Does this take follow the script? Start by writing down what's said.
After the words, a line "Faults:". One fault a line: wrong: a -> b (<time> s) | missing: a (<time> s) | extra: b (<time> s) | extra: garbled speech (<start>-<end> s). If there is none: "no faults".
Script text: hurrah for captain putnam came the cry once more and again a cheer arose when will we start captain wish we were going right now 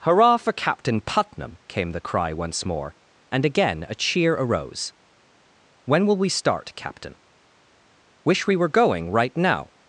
hurrah for captain putnam came the cry once more and again a cheer arose when will we start captain wish we were going right now
Faults:
no faults